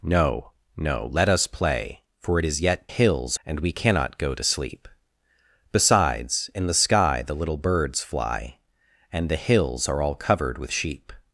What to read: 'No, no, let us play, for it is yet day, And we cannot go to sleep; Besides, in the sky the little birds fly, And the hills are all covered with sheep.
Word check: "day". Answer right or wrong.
wrong